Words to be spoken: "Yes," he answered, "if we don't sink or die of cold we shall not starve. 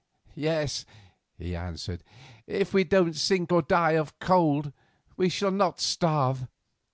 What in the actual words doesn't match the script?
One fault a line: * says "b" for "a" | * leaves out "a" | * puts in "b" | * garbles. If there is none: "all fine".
all fine